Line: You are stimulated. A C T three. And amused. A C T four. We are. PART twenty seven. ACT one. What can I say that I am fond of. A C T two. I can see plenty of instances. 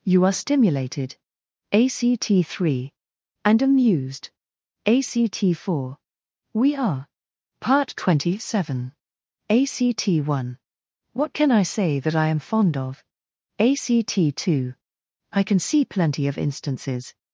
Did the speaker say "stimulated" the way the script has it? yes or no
yes